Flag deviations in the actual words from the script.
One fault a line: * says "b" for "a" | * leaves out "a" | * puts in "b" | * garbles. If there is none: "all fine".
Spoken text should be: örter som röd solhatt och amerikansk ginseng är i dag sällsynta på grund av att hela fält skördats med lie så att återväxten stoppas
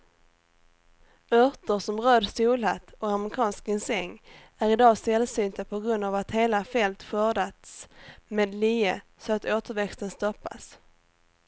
all fine